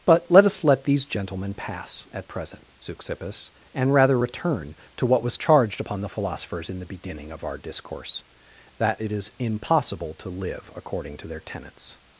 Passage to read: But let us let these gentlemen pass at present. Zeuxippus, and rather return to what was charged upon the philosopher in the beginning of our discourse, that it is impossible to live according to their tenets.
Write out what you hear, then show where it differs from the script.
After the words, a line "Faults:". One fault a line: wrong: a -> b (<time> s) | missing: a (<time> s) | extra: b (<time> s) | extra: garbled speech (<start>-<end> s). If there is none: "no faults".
But let us let these gentlemen pass at present. Zeuxippus, and rather return to what was charged upon the philosophers in the beginning of our discourse, that it is impossible to live according to their tenets.
Faults:
wrong: philosopher -> philosophers (6.1 s)